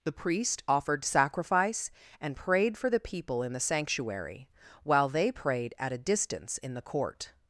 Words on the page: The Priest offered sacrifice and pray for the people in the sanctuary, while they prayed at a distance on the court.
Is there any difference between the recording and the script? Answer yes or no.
yes